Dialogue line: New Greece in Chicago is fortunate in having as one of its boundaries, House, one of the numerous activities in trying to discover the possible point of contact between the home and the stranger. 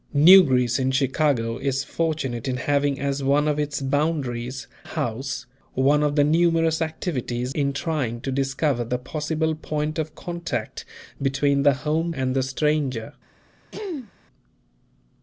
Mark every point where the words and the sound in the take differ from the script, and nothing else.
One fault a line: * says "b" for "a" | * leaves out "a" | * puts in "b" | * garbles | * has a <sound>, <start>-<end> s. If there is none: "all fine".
* has a throat clearing, 13.7-14.1 s